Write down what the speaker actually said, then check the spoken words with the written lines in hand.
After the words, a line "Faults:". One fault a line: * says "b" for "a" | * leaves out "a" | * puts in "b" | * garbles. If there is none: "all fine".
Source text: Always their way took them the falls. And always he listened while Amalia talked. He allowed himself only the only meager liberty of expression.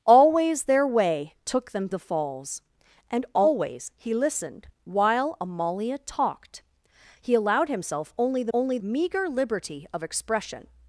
Always their way took them the falls. And always he listened while Amalia talked. He allowed himself only the only meager liberty of expression.
Faults:
all fine